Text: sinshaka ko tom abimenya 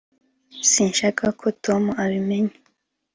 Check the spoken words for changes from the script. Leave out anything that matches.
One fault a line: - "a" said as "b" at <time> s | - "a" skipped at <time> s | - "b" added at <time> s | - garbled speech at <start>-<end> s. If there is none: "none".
none